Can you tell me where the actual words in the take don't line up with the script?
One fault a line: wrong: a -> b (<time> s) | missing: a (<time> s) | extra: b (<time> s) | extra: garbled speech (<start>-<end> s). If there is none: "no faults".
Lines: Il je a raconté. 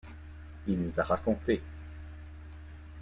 wrong: je -> nous (0.8 s)